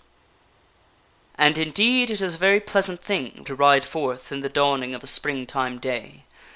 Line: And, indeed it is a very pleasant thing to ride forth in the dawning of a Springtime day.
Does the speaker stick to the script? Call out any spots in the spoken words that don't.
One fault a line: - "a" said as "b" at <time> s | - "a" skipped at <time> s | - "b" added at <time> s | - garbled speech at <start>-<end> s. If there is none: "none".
none